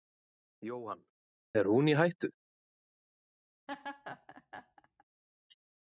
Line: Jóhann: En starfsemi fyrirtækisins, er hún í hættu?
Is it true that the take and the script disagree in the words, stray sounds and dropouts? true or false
true